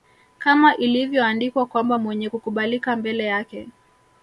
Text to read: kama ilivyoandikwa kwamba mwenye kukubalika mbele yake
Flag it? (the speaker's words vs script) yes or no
no